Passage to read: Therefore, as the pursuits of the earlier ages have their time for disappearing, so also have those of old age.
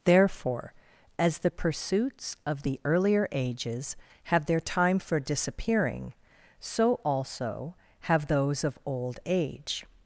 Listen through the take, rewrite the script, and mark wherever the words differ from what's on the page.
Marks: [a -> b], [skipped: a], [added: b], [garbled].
Therefore, as the pursuits of the earlier ages have their time for disappearing, so also have those of old age.